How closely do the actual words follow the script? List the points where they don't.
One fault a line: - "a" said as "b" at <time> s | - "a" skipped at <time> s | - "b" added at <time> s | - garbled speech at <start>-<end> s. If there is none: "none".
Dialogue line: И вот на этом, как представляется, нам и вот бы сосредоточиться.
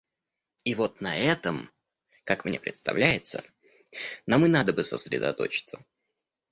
- "мне" added at 2.5 s
- "вот" said as "надо" at 4.5 s